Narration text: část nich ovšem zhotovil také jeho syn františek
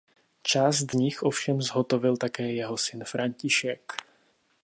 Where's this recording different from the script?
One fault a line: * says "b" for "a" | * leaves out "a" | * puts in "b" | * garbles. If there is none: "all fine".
all fine